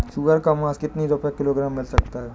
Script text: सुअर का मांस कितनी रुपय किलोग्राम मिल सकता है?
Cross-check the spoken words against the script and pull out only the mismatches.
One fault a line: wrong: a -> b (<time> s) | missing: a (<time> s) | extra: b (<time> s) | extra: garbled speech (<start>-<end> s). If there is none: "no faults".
no faults